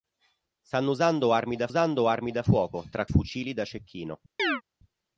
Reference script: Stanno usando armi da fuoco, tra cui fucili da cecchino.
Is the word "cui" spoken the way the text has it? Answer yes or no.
no